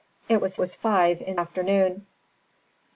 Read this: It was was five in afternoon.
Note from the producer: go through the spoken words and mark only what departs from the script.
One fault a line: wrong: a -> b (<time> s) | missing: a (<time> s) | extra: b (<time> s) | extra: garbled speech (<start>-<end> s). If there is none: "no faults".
no faults